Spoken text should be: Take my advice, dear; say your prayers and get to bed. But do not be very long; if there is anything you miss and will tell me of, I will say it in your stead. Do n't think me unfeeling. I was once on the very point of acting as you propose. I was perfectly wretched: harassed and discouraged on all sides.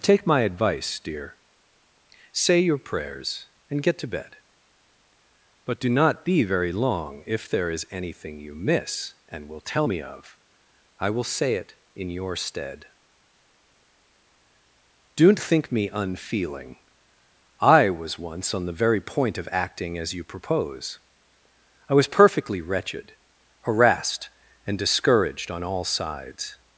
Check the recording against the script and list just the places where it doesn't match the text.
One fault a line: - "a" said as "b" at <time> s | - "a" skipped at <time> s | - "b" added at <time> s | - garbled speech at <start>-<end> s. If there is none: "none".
none